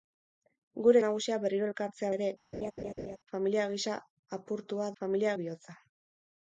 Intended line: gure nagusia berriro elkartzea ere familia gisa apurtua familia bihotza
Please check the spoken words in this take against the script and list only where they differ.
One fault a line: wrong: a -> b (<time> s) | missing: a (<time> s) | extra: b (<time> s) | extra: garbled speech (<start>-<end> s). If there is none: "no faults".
no faults